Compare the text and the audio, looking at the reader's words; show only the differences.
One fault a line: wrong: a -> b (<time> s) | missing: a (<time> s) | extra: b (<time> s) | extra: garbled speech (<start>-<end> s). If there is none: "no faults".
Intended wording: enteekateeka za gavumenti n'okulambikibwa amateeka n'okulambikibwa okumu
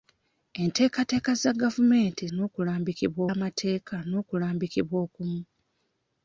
no faults